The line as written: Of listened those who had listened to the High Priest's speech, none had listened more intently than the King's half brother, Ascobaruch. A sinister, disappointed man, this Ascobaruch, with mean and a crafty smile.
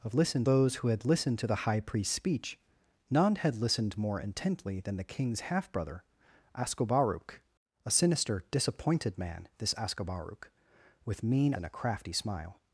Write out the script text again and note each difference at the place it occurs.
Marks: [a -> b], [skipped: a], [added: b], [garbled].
Of listened those who had listened to the High Priest's speech, none had listened more intently than the King's half brother, Ascobaruch. A sinister, disappointed man, this Ascobaruch, with mean and a crafty smile.